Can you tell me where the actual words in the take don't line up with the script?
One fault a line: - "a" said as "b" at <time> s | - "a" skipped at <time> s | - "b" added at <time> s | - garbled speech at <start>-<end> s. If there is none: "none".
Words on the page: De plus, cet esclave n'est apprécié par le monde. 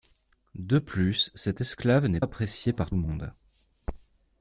none